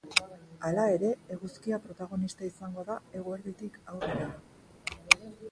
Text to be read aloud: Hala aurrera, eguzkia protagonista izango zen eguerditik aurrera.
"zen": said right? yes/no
no